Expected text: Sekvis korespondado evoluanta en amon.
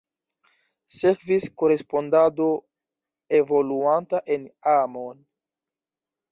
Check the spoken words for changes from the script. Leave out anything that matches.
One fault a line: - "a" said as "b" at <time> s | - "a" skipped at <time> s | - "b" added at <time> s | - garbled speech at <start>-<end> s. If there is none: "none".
none